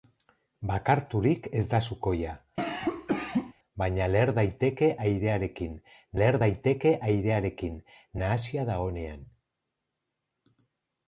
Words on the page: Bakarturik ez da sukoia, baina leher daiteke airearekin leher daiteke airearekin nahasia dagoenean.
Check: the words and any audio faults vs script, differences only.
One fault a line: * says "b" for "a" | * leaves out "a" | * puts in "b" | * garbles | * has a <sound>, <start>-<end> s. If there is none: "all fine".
* has a cough, 2.6-3.5 s